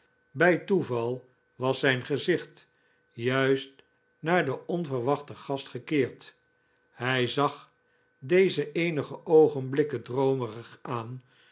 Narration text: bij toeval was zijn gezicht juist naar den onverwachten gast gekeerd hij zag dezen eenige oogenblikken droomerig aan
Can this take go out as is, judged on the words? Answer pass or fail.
pass